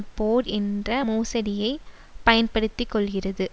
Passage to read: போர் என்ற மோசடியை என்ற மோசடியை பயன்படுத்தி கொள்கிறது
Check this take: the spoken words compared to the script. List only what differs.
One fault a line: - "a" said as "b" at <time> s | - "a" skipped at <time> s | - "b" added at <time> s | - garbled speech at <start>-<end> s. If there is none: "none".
- "என்ற மோசடியை" skipped at 1.7 s